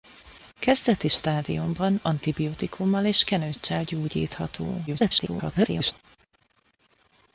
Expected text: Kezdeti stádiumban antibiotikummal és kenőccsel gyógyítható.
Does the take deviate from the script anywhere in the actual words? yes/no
yes